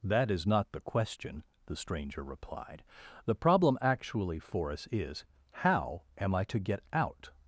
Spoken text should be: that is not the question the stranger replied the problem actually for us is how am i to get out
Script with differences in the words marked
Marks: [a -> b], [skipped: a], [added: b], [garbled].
that is not the question the stranger replied the problem actually for us is how am i to get out